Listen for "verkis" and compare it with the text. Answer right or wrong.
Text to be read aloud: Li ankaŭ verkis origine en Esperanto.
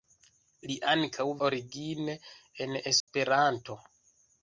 wrong